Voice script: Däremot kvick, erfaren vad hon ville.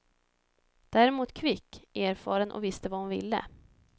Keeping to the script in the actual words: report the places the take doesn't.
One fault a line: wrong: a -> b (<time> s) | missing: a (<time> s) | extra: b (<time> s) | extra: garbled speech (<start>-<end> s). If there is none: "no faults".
extra: och visste (2.5 s)